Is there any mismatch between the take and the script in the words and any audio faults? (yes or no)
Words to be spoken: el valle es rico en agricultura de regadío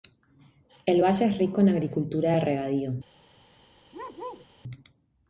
yes